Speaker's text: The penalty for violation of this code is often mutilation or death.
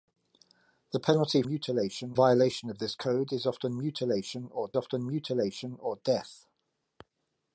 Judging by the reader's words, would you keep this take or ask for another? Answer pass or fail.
fail